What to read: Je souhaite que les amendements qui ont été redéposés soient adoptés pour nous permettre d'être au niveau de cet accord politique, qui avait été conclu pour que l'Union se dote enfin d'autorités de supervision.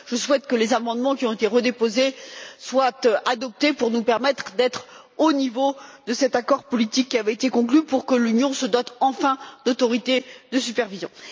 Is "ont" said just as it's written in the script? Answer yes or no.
yes